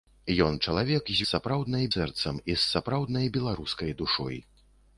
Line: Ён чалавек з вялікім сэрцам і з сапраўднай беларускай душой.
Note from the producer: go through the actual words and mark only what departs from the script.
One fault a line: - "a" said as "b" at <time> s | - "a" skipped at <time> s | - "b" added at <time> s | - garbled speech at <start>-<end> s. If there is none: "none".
- "вялікім" said as "сапраўднай" at 1.3 s